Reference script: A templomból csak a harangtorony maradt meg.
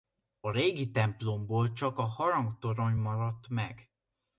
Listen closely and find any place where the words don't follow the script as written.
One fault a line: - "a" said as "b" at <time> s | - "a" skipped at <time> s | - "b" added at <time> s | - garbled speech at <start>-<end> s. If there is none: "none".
- "régi" added at 0.5 s